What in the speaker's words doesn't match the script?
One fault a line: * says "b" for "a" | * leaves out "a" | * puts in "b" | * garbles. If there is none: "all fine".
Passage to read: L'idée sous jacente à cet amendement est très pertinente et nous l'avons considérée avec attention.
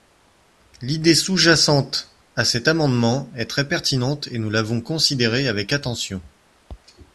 all fine